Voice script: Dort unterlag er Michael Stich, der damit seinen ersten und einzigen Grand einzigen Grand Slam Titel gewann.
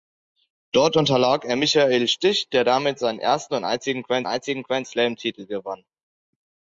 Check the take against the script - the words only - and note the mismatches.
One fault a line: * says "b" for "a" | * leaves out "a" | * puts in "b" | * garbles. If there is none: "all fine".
all fine